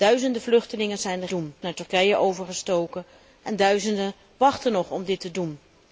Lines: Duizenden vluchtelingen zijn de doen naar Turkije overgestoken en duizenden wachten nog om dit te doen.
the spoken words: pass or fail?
pass